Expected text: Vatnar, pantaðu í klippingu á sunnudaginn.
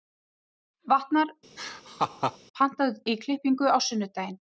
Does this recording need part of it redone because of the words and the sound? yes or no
yes